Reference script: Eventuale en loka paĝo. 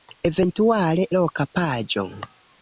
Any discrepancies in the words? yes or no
yes